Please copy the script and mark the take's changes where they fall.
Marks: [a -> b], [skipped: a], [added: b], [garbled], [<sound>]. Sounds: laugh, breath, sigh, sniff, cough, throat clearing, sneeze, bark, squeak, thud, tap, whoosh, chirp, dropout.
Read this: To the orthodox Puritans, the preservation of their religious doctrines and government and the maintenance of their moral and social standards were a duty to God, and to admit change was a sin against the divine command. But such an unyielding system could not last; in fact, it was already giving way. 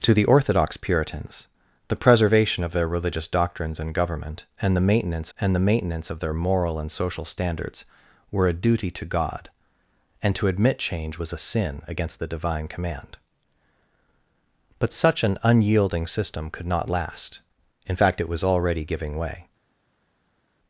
To the orthodox Puritans, the preservation of their religious doctrines and government and the maintenance [added: and the maintenance] of their moral and social standards were a duty to God, and to admit change was a sin against the divine command. But such an unyielding system could not last; in fact, it was already giving way.